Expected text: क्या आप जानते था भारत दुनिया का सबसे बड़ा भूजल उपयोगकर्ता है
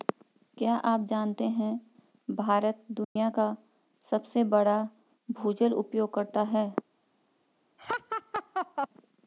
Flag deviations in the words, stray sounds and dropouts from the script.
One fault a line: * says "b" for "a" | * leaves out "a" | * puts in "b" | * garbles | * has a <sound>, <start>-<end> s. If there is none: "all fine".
* says "है" for "था"
* has a dropout, 3.0-3.2 s
* has a laugh, 7.8-8.9 s